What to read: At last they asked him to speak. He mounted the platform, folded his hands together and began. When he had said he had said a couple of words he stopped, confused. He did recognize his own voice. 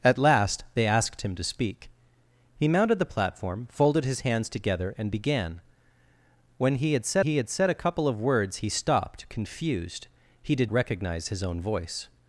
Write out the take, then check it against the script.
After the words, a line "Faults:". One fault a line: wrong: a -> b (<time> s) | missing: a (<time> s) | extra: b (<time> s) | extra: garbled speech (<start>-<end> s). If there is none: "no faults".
At last they asked him to speak. He mounted the platform, folded his hands together and began. When he had said he had said a couple of words he stopped, confused. He did recognize his own voice.
Faults:
no faults